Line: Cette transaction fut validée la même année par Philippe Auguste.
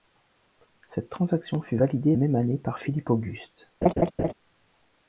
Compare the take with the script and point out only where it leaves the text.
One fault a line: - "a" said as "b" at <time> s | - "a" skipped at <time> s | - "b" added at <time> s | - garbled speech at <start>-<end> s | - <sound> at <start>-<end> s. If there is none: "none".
- "la" skipped at 2.1 s
- laugh at 3.8-4.3 s